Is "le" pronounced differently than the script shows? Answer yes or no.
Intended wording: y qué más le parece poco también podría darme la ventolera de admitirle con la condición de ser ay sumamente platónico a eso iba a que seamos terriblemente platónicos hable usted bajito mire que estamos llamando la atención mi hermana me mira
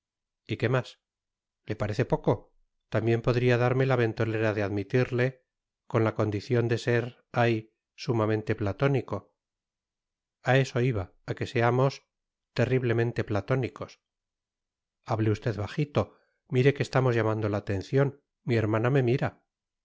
no